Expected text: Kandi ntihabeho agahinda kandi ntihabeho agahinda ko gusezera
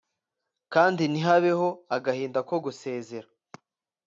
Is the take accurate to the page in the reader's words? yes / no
no